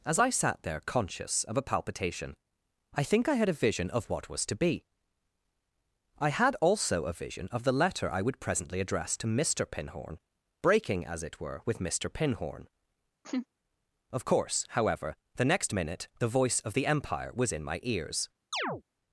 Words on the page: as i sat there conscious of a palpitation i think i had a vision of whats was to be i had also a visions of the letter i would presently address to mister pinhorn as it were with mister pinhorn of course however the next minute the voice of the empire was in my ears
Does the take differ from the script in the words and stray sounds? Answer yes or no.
yes